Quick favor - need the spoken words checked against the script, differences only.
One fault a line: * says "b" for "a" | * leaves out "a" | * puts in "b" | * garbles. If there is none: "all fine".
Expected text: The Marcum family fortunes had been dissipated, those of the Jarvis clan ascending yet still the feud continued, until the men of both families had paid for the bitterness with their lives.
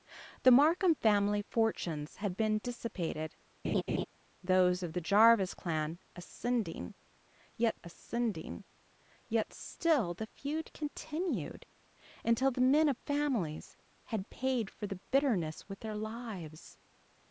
* puts in "ascending yet"
* leaves out "both"